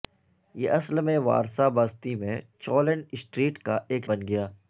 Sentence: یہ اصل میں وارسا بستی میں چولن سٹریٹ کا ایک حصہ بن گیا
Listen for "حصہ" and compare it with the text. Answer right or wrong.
wrong